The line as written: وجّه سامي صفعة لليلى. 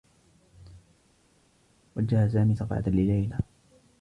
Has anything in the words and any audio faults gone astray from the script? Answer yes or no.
no